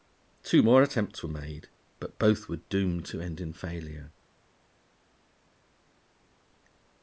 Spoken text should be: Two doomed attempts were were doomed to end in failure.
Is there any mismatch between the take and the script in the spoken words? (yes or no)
yes